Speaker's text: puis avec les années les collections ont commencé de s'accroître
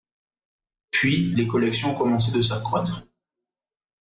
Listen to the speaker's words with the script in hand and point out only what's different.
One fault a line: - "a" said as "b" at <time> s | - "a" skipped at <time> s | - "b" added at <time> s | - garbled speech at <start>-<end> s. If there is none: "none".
- "avec les années" skipped at 1.4 s